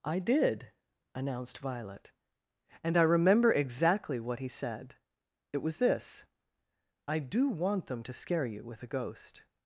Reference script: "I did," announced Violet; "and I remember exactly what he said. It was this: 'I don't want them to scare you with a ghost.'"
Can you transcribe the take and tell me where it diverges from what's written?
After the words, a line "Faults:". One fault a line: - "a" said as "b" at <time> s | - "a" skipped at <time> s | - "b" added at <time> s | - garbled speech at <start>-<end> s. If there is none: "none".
"I did," announced Violet; "and I remember exactly what he said. It was this: 'I do want them to scare you with a ghost.'"
Faults:
- "don't" said as "do" at 7.2 s